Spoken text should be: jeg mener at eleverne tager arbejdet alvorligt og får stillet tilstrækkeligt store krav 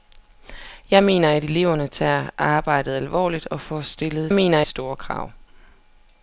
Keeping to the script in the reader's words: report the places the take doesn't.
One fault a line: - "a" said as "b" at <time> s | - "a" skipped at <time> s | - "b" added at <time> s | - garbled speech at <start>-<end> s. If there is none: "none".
- "tilstrækkeligt" said as "mener" at 4.3 s